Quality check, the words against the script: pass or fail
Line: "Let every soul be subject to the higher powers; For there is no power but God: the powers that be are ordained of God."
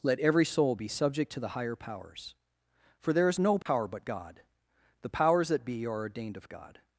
pass